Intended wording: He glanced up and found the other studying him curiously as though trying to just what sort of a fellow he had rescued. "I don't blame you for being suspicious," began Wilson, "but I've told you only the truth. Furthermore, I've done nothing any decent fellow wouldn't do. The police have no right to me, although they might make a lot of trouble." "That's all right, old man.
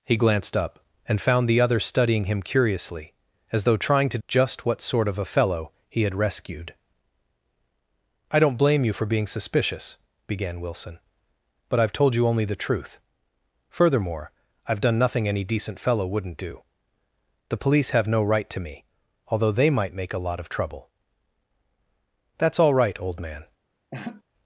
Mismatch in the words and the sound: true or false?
true